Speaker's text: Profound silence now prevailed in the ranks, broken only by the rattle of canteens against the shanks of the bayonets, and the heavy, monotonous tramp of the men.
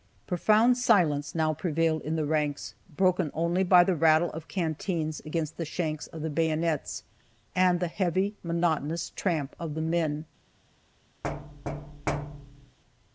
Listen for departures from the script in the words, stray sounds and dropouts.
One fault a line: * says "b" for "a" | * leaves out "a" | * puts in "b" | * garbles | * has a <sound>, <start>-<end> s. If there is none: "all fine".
* has a thud, 11.2-12.8 s